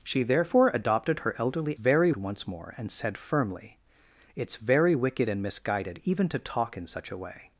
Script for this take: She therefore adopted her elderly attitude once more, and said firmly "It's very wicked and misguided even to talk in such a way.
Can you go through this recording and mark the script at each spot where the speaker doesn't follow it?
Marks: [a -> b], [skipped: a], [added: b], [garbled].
She therefore adopted her elderly [attitude -> very] once more, and said firmly "It's very wicked and misguided even to talk in such a way.